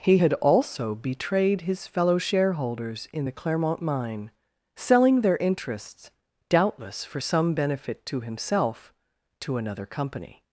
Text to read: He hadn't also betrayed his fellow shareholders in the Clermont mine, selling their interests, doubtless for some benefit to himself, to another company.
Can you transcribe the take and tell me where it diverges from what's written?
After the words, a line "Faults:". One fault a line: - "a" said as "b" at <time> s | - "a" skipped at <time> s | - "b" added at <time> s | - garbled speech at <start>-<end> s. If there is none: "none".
He had also betrayed his fellow shareholders in the Clermont mine, selling their interests, doubtless for some benefit to himself, to another company.
Faults:
- "hadn't" said as "had" at 0.1 s